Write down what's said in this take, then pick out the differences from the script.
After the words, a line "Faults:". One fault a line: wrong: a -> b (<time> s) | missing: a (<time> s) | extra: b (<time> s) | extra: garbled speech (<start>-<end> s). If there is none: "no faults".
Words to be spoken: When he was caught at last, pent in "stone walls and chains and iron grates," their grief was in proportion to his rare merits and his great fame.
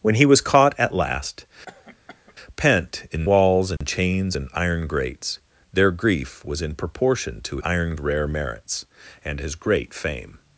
When he was caught at last, pent in "walls and chains and iron grates," their grief was in proportion to iron rare merits and his great fame.
Faults:
missing: stone (3.3 s)
wrong: his -> iron (7.6 s)